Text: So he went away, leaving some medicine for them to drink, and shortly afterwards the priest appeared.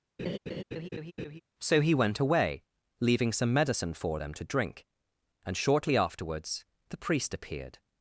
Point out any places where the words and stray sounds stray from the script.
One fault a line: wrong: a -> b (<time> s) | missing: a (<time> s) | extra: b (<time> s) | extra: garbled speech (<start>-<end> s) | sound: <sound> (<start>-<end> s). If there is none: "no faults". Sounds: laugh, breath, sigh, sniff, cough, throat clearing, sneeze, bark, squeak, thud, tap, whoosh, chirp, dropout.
sound: laugh (0.2-1.4 s)